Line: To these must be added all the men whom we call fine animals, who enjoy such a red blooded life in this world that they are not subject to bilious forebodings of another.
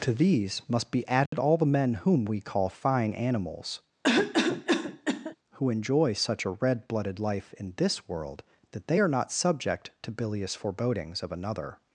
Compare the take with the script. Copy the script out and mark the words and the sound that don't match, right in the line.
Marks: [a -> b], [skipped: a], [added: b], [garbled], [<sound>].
To these must be added [dropout] all the men whom we call fine animals, [cough] who enjoy such a red blooded life in this world that they are not subject to bilious forebodings of another.